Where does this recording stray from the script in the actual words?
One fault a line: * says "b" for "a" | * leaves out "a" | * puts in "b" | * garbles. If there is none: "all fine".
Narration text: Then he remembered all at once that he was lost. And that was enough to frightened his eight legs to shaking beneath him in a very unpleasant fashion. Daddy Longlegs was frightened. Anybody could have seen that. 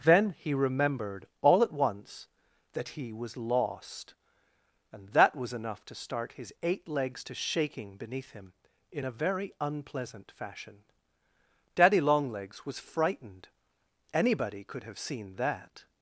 * says "start" for "frightened"